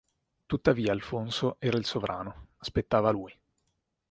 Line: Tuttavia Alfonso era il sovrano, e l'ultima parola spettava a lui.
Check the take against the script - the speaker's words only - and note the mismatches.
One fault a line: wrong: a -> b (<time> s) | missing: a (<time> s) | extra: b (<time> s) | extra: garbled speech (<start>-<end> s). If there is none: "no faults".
missing: e l'ultima parola (2.5 s)